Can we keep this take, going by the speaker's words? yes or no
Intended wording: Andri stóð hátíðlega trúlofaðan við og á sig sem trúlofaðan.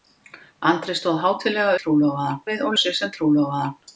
yes